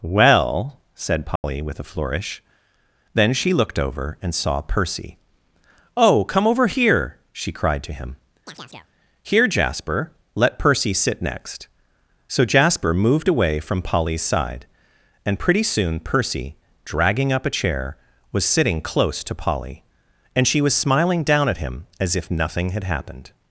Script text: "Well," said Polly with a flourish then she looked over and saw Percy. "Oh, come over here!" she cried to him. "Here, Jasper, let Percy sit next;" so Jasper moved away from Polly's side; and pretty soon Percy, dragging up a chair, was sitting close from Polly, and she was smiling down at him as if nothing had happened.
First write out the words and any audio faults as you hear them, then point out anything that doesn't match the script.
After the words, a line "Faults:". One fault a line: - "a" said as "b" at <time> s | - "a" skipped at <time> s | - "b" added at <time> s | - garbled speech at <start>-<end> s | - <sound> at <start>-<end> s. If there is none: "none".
"Well," said Polly with a flourish then she looked over and saw Percy. "Oh, come over here!" she cried to him. "Here, Jasper, let Percy sit next;" so Jasper moved away from Polly's side; and pretty soon Percy, dragging up a chair, was sitting close to Polly, and she was smiling down at him as if nothing had happened.
Faults:
- dropout at 1.4-1.4 s
- chirp at 8.5-8.9 s
- "from" said as "to" at 19.2 s